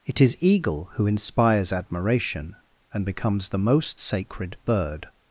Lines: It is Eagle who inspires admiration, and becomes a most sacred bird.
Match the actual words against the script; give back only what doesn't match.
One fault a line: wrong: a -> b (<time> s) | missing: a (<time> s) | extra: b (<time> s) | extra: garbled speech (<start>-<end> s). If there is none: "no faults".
wrong: a -> the (3.5 s)